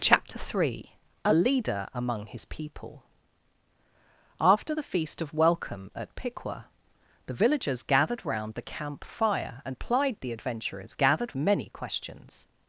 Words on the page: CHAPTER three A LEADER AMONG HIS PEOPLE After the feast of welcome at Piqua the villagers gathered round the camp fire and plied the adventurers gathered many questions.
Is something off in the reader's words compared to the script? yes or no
no